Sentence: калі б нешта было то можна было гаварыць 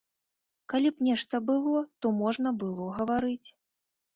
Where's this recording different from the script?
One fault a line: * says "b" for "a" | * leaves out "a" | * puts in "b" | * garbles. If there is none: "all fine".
all fine